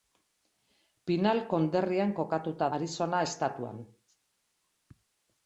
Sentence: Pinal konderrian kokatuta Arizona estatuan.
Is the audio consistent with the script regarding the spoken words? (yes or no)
yes